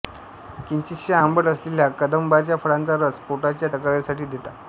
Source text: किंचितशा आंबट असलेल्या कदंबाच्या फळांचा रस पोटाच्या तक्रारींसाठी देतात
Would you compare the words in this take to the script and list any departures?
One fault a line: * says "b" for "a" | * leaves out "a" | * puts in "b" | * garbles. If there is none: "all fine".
all fine